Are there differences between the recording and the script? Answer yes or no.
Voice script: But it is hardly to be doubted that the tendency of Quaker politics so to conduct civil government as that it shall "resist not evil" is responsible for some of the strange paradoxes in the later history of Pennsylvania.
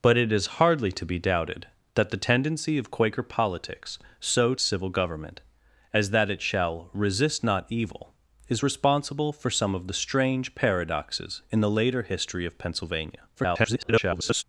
yes